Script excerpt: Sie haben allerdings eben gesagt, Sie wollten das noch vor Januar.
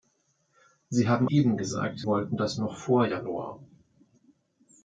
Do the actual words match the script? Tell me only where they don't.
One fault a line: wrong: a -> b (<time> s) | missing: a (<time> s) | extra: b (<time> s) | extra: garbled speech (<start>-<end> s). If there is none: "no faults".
missing: allerdings (1.3 s)
missing: Sie (2.0 s)